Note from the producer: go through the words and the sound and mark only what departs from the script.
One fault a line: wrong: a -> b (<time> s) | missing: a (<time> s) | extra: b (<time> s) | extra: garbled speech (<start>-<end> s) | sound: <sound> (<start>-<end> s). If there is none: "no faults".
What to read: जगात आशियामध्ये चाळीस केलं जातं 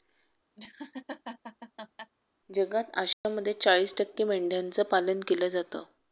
sound: laugh (0.6-2.1 s)
sound: dropout (3.1-3.2 s)
extra: टक्के मेंढ्यांचं पालन (4.0 s)